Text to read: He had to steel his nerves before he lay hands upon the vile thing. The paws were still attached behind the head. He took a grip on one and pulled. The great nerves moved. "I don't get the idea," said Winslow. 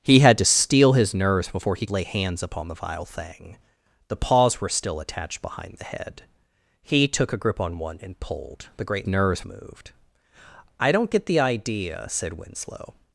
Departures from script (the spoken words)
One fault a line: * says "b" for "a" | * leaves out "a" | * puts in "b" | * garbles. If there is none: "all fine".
all fine